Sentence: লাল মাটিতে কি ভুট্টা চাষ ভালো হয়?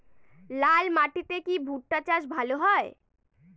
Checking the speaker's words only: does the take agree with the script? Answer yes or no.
yes